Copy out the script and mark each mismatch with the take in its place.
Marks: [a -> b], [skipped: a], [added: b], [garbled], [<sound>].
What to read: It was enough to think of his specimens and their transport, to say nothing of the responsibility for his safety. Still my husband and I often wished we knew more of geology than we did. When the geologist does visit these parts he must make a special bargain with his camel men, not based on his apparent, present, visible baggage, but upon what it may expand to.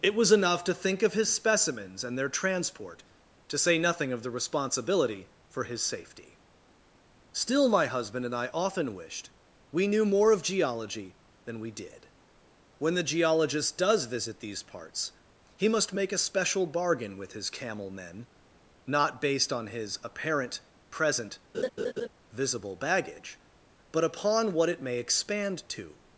It was enough to think of his specimens and their transport, to say nothing of the responsibility for his safety. Still my husband and I often wished we knew more of geology than we did. When the geologist does visit these parts he must make a special bargain with his camel men, not based on his apparent, present, [laugh] visible baggage, but upon what it may expand to.